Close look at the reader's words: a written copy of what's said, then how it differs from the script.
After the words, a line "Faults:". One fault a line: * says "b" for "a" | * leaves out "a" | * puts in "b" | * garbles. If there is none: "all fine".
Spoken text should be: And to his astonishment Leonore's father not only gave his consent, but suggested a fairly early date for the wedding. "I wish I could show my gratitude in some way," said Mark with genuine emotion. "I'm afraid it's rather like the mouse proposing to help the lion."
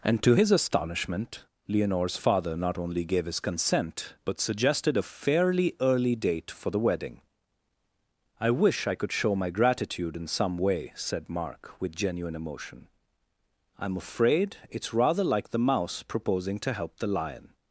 And to his astonishment Leonore's father not only gave his consent, but suggested a fairly early date for the wedding. "I wish I could show my gratitude in some way," said Mark with genuine emotion. "I'm afraid it's rather like the mouse proposing to help the lion."
Faults:
all fine